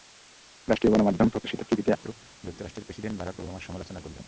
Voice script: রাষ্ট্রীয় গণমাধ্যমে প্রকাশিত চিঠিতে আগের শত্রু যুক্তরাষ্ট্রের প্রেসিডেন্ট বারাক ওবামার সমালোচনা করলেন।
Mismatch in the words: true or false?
true